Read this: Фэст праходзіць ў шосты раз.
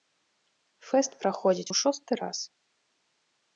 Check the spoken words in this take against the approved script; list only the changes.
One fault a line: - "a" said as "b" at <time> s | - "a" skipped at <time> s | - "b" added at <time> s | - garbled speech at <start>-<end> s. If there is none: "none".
none